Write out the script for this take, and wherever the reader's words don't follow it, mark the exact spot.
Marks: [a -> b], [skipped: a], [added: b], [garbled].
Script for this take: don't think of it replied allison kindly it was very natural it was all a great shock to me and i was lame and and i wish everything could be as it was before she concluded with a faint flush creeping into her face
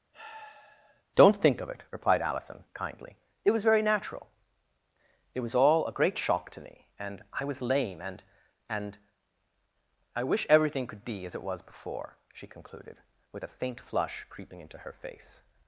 don't think of it replied allison kindly it was very natural it was all a great shock to me and i was lame and and i wish everything could be as it was before she concluded with a faint flush creeping into her face